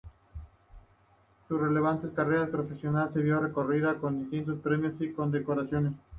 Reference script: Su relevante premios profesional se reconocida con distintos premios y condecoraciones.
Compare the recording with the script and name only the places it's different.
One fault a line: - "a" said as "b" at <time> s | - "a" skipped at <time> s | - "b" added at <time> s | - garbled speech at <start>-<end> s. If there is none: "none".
- "premios" said as "carrera" at 2.1 s
- "vio" added at 3.2 s